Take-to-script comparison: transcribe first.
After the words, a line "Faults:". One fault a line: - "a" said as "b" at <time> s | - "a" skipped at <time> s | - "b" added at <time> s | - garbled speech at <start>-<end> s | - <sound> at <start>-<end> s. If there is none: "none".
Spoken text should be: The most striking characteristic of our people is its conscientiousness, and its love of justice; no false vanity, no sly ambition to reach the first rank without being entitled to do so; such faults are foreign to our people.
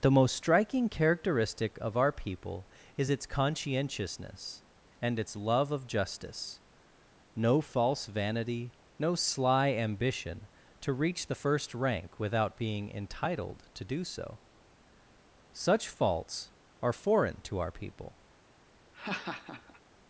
The most striking characteristic of our people is its conscientiousness, and its love of justice; no false vanity, no sly ambition to reach the first rank without being entitled to do so; such faults are foreign to our people.
Faults:
- laugh at 18.9-19.8 s